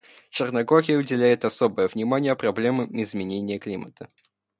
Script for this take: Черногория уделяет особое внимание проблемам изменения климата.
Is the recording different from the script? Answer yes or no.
no